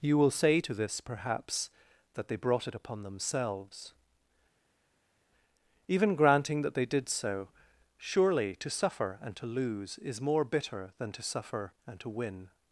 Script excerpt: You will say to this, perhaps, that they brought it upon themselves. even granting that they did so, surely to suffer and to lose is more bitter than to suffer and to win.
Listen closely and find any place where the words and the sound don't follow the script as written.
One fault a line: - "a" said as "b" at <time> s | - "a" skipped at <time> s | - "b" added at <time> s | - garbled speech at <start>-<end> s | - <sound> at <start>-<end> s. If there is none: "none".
none